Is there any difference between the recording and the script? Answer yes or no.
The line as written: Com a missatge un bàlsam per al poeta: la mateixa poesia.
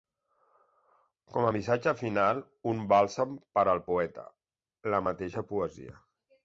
yes